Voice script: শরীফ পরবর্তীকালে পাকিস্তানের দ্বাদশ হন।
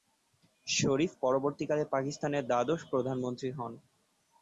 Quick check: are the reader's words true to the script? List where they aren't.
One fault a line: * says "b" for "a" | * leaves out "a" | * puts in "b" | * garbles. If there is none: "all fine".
* puts in "প্রধানমন্ত্রী"